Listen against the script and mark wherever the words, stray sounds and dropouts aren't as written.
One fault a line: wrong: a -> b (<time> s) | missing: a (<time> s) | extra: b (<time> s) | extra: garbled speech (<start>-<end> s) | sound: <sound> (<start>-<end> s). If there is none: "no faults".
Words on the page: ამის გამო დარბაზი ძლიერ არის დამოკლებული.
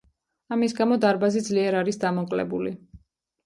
no faults